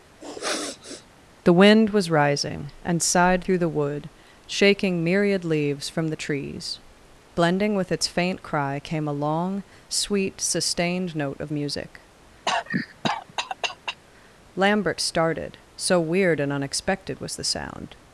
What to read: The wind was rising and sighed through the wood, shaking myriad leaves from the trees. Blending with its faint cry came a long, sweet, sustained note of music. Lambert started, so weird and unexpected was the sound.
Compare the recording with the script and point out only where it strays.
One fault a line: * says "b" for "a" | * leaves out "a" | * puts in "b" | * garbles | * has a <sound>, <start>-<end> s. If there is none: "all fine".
* has a sniff, 0.2-1.1 s
* has a cough, 12.5-14.0 s